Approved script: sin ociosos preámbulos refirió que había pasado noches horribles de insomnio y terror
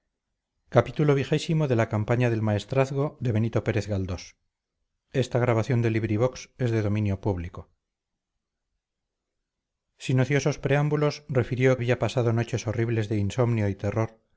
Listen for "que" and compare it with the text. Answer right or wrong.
wrong